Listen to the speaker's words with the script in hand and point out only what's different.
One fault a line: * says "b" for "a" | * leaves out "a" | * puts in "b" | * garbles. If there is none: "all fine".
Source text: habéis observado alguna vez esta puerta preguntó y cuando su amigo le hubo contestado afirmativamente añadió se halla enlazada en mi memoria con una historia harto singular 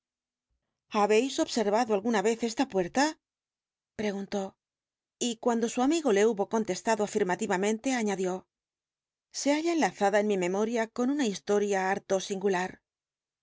all fine